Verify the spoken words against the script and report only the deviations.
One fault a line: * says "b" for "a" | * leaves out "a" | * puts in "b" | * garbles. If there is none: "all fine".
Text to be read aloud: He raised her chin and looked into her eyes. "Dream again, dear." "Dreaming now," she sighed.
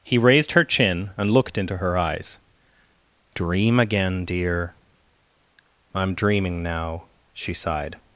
* puts in "I'm"